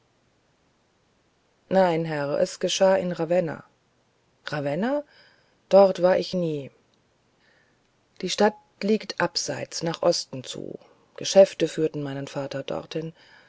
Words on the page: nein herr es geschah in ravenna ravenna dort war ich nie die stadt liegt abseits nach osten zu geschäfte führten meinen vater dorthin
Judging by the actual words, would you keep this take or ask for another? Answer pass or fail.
pass